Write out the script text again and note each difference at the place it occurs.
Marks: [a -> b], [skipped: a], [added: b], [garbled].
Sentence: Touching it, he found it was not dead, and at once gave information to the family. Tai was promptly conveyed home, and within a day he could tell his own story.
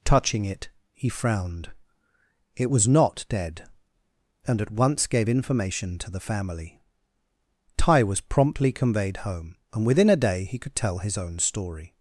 Touching it, he [found -> frowned] it was not dead, and at once gave information to the family. Tai was promptly conveyed home, and within a day he could tell his own story.